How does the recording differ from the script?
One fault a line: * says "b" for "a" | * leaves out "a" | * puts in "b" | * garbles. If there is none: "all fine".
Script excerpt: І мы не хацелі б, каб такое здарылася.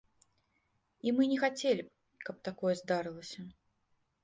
all fine